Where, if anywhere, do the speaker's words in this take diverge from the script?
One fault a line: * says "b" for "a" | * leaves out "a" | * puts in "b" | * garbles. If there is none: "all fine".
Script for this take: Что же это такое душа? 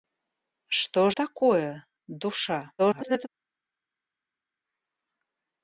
* leaves out "же это"
* garbles